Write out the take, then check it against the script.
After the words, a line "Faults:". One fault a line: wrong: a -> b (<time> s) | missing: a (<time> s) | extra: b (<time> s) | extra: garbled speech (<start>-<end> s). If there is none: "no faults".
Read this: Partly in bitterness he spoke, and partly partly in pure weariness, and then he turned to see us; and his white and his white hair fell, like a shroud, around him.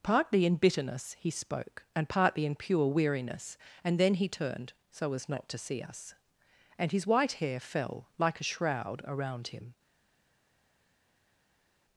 Partly in bitterness he spoke, and partly in pure weariness, and then he turned so as not to see us; and his white hair fell, like a shroud, around him.
Faults:
missing: partly (2.4 s)
extra: so as not (4.9 s)
missing: and his white (7.3 s)